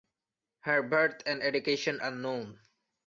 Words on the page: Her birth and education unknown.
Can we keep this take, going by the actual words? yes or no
yes